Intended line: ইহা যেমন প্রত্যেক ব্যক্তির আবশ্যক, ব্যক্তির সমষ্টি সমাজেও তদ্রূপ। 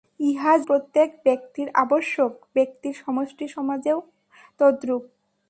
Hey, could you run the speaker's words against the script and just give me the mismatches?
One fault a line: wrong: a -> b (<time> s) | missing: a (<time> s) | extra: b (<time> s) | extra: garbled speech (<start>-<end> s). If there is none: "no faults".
missing: যেমন (0.5 s)